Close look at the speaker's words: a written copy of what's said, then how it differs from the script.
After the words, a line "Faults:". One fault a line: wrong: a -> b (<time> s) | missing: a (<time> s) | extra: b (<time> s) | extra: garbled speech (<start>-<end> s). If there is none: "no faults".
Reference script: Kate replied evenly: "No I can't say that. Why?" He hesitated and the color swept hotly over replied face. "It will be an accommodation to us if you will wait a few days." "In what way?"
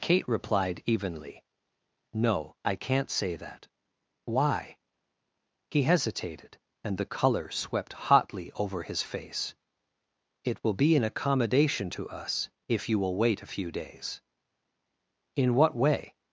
Kate replied evenly: "No I can't say that. Why?" He hesitated and the color swept hotly over his face. "It will be an accommodation to us if you will wait a few days." "In what way?"
Faults:
wrong: replied -> his (8.8 s)